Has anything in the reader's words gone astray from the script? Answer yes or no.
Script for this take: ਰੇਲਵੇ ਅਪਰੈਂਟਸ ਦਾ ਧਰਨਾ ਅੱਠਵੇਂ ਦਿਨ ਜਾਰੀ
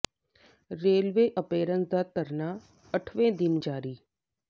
no